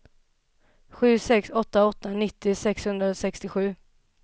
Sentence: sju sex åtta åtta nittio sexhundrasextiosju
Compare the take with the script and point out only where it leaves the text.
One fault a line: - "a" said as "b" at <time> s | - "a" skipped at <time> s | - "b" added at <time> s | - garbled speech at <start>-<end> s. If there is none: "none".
none